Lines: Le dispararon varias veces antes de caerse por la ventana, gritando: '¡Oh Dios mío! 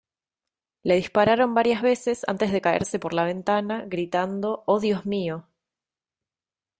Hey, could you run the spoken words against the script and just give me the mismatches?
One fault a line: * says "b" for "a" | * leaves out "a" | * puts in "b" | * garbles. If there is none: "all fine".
all fine